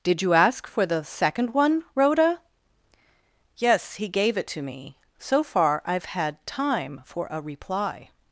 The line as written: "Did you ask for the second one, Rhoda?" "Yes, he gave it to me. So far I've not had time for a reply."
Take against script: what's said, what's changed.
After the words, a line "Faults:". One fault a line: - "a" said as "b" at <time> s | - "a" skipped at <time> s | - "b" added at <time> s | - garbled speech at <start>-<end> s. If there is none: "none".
"Did you ask for the second one, Rhoda?" "Yes, he gave it to me. So far I've had time for a reply."
Faults:
- "not" skipped at 6.1 s